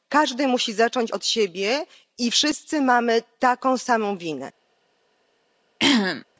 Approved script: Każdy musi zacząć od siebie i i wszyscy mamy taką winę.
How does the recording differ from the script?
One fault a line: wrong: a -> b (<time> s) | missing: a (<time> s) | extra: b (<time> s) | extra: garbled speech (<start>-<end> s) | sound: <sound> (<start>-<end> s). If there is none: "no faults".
missing: i (2.3 s)
extra: samą (3.8 s)
sound: throat clearing (5.8-6.3 s)